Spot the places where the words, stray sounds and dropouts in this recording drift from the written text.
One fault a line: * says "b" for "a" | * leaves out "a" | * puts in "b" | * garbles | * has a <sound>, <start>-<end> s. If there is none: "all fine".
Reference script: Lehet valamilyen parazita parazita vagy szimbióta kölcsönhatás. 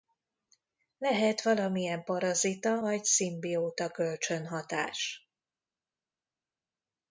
* leaves out "parazita"